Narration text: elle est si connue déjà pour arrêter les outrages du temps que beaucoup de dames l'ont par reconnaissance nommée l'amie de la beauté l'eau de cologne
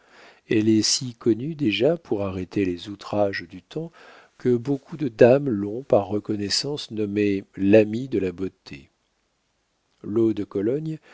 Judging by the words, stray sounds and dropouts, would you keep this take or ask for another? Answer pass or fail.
pass